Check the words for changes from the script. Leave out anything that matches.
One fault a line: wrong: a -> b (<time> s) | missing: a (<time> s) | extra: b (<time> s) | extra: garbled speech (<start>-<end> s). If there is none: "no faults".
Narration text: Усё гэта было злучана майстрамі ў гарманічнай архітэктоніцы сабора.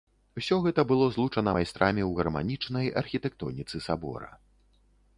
no faults